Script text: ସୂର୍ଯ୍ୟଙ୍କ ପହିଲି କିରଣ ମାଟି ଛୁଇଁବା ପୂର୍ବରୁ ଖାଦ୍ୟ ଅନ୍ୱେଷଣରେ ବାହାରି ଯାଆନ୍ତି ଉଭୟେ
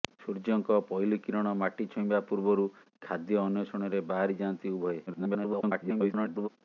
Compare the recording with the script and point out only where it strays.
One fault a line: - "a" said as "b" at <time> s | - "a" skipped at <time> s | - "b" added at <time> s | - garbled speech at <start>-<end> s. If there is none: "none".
- garbled speech at 5.1-6.5 s